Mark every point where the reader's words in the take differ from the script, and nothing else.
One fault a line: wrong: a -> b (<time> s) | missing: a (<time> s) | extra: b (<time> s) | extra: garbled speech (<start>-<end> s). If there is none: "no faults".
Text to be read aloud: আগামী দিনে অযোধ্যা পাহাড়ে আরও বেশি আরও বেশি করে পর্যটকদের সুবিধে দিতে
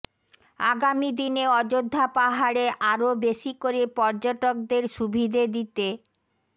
missing: আরও বেশি (3.5 s)